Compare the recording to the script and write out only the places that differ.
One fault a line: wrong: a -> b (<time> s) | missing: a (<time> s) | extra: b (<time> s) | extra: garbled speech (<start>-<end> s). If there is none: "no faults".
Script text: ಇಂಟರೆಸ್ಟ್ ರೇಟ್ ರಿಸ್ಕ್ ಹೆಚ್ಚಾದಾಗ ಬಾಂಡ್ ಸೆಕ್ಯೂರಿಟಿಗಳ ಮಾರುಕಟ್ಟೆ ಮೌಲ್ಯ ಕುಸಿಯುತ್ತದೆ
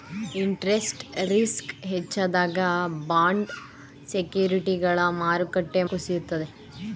missing: ರೇಟ್ (1.0 s)
missing: ಮೌಲ್ಯ (5.8 s)